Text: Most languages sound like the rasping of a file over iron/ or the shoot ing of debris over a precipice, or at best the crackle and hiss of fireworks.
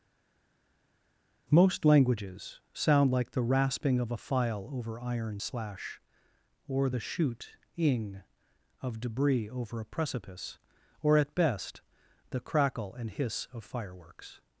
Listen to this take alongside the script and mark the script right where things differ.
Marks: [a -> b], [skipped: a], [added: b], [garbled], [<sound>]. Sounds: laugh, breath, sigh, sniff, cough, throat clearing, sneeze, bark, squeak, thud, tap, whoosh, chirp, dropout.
Most languages sound like the rasping of a file over iron/ [added: slash] or the shoot ing of debris over a precipice, or at best the crackle and hiss of fireworks.